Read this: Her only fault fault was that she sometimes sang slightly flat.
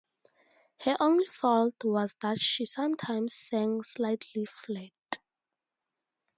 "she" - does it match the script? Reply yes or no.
yes